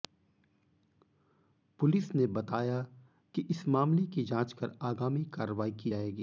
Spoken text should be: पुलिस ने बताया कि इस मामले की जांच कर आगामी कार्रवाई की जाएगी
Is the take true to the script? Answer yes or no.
yes